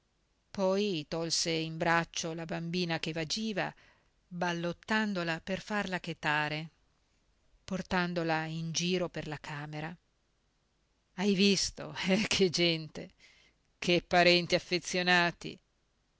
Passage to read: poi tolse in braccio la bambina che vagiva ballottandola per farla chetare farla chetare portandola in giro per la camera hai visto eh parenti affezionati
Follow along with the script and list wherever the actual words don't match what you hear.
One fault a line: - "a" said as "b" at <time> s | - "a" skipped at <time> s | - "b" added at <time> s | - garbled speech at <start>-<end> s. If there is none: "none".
- "farla chetare" skipped at 6.7 s
- "che gente che" added at 12.3 s